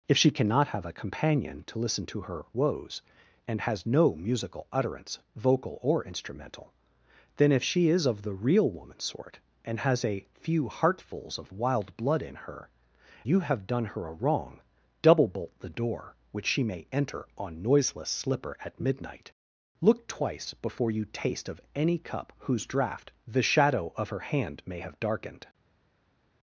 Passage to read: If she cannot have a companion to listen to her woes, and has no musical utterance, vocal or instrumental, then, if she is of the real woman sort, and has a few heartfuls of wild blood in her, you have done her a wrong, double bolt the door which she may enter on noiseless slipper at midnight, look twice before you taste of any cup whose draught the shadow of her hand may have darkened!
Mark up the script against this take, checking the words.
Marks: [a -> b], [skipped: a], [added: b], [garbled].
If she cannot have a companion to listen to her woes, and has no musical utterance, vocal or instrumental, then, if she is of the real woman sort, and has a few heartfuls of wild blood in her, you have done her a wrong, double bolt the door which she may enter on noiseless slipper at midnight, look twice before you taste of any cup whose draught the shadow of her hand may have darkened!